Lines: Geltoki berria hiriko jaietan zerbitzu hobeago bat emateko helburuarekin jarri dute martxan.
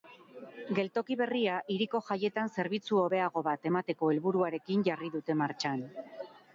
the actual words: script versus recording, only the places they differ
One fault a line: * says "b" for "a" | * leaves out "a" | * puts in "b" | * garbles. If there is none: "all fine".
all fine